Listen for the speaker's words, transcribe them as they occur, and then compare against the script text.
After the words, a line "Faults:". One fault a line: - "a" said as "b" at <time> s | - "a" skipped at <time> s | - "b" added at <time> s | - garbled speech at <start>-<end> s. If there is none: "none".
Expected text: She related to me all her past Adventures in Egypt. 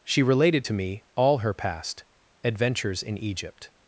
She related to me all her past Adventures in Egypt.
Faults:
none